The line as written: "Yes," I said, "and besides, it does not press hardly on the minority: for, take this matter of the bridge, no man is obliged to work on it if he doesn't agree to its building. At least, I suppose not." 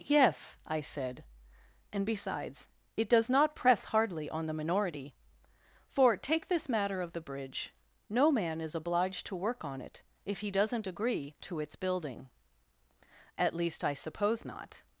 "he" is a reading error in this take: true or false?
false